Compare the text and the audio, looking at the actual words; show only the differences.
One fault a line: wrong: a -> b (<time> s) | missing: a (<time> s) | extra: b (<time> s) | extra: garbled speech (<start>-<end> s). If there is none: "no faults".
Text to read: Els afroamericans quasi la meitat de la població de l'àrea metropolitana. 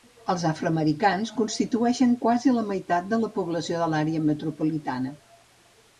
extra: constitueixen (1.4 s)